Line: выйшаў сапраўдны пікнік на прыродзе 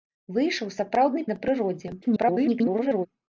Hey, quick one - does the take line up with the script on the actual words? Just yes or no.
no